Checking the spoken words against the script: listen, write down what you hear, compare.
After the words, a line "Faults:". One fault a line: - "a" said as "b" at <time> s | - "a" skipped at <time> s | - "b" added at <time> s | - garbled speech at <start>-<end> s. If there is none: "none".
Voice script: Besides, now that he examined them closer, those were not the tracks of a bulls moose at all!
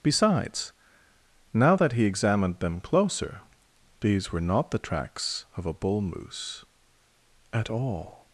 Besides, now that he examined them closer, these were not the tracks of a bull moose at all!
Faults:
- "those" said as "these" at 4.0 s
- "bulls" said as "bull" at 5.7 s